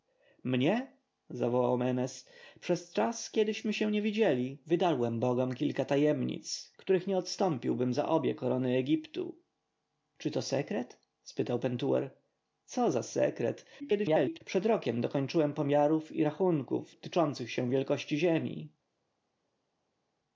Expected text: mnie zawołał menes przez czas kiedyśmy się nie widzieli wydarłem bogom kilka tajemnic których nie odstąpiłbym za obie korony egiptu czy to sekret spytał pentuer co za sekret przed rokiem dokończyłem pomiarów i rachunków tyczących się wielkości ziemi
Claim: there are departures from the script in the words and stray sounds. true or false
true